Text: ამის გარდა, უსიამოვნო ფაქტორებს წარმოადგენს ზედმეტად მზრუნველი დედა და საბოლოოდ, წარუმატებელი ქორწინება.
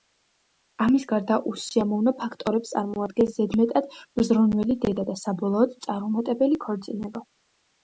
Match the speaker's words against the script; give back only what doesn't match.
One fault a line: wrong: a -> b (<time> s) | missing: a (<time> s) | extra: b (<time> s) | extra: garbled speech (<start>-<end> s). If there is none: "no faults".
no faults